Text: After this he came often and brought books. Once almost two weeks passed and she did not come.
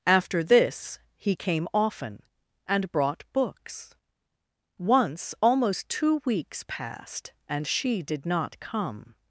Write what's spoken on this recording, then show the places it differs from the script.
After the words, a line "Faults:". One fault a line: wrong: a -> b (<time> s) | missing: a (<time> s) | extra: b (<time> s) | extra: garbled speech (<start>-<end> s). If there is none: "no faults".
After this he came often and brought books. Once almost two weeks passed and she did not come.
Faults:
no faults